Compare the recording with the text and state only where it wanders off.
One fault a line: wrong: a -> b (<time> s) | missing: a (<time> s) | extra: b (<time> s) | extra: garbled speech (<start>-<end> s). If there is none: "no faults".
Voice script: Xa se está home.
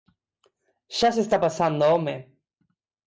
extra: pasando (1.4 s)